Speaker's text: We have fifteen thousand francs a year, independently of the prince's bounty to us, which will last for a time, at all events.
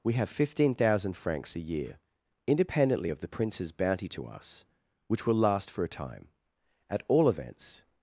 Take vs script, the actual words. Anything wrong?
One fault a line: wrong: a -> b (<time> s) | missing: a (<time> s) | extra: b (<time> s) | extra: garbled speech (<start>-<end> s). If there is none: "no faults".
no faults